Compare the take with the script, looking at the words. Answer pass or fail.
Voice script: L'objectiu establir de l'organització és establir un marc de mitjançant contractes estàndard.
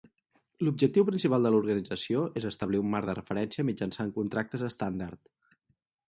fail